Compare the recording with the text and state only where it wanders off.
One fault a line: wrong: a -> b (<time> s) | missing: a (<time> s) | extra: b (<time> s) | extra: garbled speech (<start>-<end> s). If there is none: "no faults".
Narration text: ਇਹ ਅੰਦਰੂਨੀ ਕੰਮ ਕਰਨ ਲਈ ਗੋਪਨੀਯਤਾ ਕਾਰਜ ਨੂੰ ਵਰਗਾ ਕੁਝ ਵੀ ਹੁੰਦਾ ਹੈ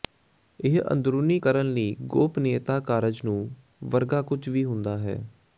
missing: ਕੰਮ (1.4 s)